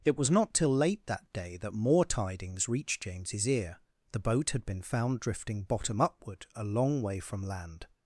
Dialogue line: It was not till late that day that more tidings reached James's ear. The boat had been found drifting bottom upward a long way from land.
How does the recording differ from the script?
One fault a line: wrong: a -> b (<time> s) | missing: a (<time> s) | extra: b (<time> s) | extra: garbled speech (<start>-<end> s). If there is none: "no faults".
no faults